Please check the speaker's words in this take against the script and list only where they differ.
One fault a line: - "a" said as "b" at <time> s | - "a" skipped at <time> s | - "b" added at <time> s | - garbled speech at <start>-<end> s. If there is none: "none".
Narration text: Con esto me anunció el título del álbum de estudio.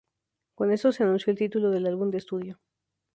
- "me" said as "se" at 0.9 s